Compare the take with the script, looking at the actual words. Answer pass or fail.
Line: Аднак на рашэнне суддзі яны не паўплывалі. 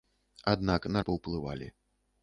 fail